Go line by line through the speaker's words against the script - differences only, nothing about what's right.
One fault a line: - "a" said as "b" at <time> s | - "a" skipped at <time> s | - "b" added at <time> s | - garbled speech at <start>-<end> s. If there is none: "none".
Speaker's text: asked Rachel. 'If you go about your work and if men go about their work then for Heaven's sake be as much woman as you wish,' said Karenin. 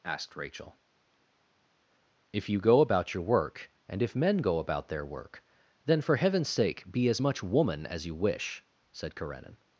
none